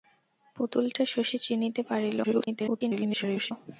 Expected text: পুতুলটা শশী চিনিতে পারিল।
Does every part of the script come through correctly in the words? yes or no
no